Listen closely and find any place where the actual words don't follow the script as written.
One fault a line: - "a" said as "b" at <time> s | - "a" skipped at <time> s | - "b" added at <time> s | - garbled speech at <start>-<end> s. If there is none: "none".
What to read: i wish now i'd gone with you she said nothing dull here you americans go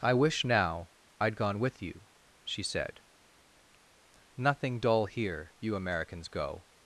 none